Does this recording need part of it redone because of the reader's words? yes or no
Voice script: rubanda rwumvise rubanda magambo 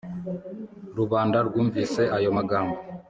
yes